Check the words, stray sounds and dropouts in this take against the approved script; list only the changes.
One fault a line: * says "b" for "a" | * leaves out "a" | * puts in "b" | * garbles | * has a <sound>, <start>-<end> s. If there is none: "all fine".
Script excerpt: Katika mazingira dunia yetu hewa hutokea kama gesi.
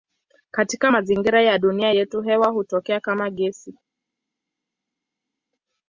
* puts in "ya"